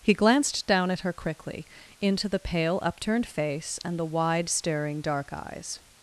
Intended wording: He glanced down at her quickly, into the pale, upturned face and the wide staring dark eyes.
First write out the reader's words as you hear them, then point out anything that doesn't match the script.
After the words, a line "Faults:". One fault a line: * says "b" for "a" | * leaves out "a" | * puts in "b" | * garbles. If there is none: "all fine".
He glanced down at her quickly, into the pale, upturned face and the wide staring dark eyes.
Faults:
all fine